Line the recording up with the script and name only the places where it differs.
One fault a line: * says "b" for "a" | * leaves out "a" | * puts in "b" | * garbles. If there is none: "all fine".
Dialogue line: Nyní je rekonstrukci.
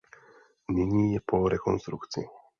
* puts in "po"